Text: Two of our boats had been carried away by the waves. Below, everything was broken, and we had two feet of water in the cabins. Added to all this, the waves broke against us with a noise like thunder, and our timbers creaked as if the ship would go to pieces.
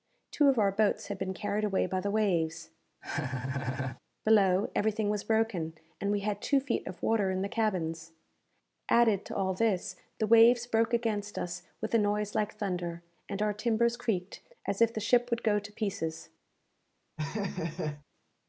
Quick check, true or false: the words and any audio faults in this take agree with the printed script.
false